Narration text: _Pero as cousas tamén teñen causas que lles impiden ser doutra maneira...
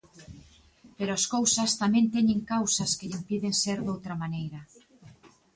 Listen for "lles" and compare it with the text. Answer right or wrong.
wrong